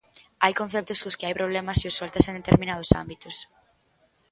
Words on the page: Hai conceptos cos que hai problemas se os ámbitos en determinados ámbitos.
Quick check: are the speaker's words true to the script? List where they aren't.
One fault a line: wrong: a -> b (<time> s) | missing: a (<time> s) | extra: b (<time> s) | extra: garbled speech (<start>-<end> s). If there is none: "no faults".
wrong: ámbitos -> soltas (2.0 s)